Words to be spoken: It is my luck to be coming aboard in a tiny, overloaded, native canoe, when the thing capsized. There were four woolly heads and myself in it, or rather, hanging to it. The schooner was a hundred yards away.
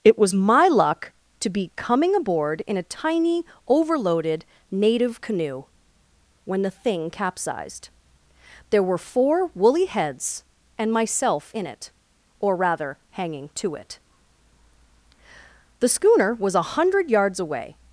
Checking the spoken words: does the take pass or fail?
fail